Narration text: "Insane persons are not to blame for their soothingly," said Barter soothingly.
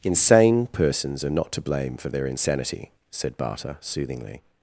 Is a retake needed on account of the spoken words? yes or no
yes